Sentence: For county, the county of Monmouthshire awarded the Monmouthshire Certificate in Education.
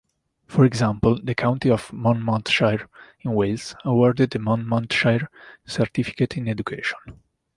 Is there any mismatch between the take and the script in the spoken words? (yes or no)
yes